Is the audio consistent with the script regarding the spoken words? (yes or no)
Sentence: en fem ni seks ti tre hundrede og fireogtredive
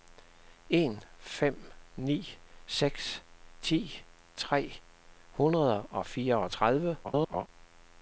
no